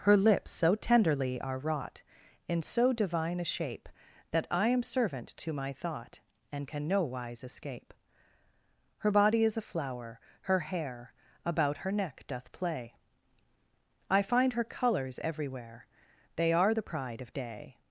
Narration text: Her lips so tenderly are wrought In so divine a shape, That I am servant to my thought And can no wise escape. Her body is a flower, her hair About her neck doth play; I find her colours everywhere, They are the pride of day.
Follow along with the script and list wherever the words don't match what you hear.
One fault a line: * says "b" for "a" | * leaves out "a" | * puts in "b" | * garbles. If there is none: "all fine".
all fine